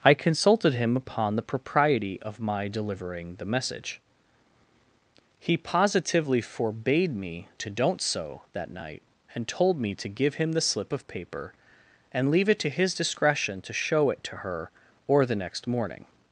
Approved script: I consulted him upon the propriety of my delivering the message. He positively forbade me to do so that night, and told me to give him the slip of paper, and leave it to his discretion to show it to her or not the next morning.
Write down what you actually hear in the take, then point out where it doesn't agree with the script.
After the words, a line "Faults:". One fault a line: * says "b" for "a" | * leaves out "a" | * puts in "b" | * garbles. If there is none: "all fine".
I consulted him upon the propriety of my delivering the message. He positively forbade me to don't so that night, and told me to give him the slip of paper, and leave it to his discretion to show it to her or the next morning.
Faults:
* says "don't" for "do"
* leaves out "not"